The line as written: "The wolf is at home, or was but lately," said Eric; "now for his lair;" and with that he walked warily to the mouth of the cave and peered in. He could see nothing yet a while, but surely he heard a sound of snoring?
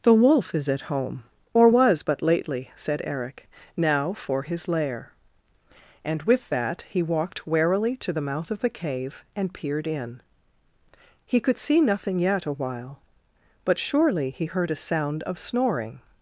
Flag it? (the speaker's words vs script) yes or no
no